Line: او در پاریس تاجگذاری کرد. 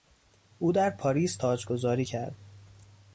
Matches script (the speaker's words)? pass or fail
pass